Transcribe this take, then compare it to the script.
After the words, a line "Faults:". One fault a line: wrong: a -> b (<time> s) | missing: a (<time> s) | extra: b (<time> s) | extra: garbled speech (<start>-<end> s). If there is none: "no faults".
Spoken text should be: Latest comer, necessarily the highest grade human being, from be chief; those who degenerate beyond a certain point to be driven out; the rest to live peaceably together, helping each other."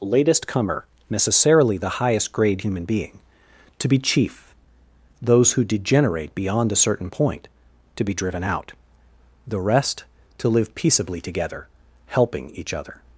Latest comer, necessarily the highest grade human being, to be chief; those who degenerate beyond a certain point to be driven out; the rest to live peaceably together, helping each other."
Faults:
wrong: from -> to (3.8 s)